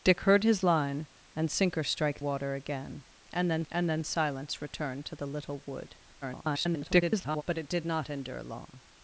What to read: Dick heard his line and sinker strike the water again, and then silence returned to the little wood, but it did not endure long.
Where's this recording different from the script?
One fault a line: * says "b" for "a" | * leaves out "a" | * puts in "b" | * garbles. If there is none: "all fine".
* leaves out "the"
* puts in "and then"
* garbles